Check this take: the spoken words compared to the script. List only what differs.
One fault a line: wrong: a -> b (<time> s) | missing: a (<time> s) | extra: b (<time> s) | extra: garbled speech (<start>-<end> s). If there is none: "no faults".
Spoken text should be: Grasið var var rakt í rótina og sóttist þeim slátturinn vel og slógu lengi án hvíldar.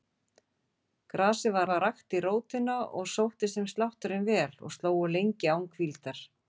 no faults